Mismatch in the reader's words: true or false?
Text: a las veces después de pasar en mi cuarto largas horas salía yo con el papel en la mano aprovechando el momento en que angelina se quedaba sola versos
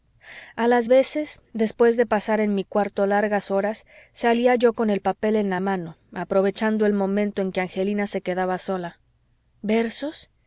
false